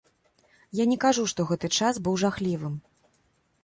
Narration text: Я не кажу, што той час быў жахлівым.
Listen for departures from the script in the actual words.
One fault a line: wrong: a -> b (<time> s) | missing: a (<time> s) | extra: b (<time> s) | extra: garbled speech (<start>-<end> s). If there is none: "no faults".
wrong: той -> гэты (1.5 s)